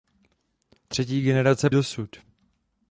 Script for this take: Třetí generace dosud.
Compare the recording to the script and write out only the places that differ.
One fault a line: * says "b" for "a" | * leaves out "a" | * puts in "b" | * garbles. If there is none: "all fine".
all fine